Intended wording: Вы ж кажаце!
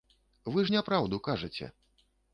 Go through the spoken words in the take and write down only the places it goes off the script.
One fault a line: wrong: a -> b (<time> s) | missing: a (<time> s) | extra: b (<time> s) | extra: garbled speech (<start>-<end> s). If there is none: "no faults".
extra: няпраўду (0.7 s)